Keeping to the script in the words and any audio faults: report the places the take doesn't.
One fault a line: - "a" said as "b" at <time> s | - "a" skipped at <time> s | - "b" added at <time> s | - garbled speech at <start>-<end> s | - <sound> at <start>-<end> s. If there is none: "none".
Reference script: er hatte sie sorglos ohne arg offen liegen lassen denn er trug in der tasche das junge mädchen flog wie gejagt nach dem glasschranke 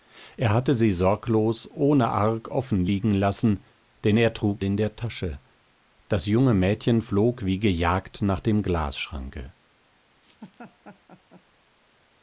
- laugh at 10.2-11.4 s